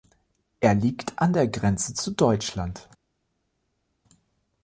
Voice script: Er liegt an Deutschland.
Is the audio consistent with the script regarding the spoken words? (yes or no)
no